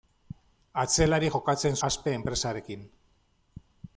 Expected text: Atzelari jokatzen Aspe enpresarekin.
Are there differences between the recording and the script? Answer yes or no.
no